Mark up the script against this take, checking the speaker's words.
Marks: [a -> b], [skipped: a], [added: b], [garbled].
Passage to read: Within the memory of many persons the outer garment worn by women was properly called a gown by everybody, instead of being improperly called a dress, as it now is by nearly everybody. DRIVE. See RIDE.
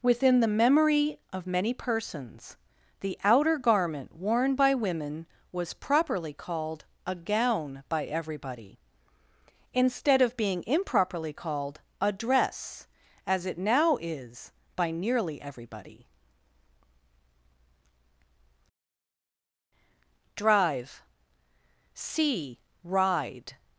Within the memory of many persons the outer garment worn by women was properly called a gown by everybody, instead of being improperly called a dress, as it now is by nearly everybody. DRIVE. See RIDE.